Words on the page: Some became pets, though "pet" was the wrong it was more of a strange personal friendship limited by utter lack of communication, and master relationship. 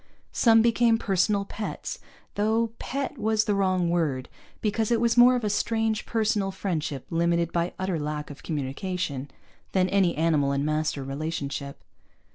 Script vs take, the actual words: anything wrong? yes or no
yes